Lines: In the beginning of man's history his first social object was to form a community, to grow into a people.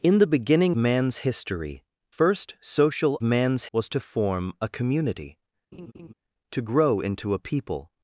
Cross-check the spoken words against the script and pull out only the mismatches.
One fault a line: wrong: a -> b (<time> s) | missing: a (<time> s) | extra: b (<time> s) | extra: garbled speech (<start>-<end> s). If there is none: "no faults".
missing: of (0.8 s)
missing: his (1.8 s)
wrong: object -> man's (3.2 s)